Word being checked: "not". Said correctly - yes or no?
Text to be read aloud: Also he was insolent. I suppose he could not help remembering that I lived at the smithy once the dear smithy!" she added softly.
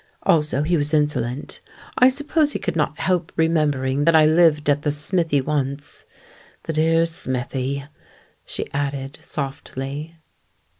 yes